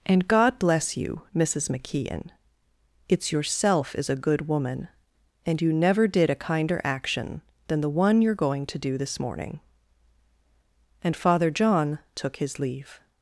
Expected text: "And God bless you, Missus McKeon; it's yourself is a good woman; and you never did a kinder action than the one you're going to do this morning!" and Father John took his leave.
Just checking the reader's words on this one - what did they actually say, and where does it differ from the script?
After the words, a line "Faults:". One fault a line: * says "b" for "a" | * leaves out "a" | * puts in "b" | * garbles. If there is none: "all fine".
"And God bless you, Missus McKeon; it's yourself is a good woman; and you never did a kinder action than the one you're going to do this morning!" and Father John took his leave.
Faults:
all fine